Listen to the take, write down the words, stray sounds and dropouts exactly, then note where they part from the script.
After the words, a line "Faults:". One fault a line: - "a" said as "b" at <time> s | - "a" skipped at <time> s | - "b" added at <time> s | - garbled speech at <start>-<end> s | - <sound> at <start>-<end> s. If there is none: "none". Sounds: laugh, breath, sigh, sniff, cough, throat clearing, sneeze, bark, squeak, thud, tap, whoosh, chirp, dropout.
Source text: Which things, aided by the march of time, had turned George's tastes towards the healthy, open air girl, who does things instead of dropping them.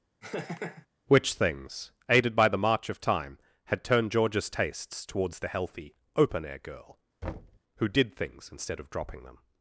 Which things, aided by the march of time, had turned George's tastes towards the healthy, open air girl, who did things instead of dropping them.
Faults:
- laugh at 0.2-0.9 s
- thud at 7.2-7.6 s
- "does" said as "did" at 7.9 s